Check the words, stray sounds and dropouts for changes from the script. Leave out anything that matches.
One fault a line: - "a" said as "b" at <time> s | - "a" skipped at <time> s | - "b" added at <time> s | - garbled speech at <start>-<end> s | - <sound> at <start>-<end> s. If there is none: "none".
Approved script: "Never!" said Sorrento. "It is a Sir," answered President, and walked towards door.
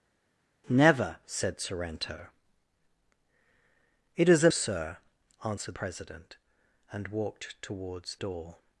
none